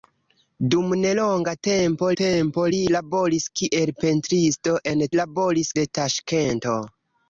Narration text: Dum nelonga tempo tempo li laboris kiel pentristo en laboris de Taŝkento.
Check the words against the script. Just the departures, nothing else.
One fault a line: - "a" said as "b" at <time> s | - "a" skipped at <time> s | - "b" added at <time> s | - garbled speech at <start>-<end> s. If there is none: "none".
none